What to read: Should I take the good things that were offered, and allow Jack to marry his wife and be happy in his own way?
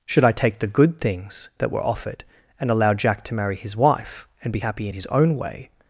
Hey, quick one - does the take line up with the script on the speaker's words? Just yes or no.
yes